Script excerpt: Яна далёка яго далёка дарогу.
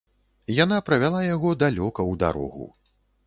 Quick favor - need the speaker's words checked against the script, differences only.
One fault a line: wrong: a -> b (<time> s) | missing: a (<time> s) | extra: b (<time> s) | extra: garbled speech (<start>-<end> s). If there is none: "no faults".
wrong: далёка -> правяла (0.9 s)
extra: ў (2.1 s)